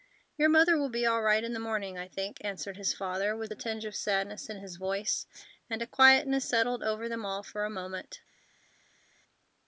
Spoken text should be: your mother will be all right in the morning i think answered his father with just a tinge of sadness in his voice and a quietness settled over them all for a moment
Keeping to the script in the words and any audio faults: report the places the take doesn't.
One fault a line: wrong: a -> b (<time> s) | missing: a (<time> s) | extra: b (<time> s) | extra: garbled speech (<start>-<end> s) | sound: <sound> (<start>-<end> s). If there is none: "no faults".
missing: just (3.5 s)